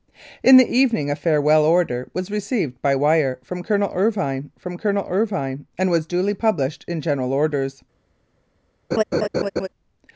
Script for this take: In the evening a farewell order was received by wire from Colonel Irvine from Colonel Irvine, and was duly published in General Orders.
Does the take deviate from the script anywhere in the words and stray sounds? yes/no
yes